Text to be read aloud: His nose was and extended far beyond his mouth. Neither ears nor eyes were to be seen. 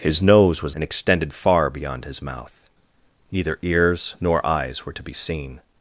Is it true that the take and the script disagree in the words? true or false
false